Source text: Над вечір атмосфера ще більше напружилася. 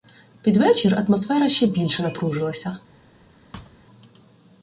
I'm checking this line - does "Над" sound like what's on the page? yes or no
no